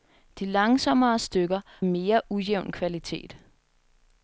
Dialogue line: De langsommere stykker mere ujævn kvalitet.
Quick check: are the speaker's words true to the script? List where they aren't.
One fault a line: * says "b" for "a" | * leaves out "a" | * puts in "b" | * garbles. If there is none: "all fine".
all fine